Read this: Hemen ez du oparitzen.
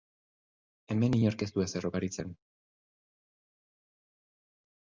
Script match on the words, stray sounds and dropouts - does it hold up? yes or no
no